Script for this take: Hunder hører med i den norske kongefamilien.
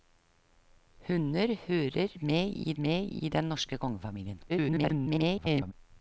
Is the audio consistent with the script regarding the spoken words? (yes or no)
no